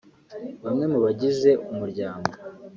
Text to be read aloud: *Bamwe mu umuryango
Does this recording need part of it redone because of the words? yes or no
yes